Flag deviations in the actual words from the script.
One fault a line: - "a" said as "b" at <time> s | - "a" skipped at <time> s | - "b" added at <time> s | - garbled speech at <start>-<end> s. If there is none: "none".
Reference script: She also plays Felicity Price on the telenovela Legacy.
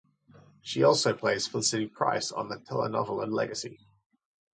none